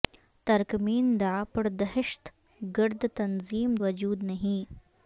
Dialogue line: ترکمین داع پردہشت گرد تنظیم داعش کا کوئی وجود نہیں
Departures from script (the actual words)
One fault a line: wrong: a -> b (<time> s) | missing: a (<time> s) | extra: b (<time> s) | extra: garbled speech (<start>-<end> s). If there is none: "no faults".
missing: داعش کا کوئی (3.8 s)